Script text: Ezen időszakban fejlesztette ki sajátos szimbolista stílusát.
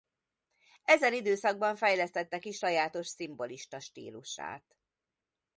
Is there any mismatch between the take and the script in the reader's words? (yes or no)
no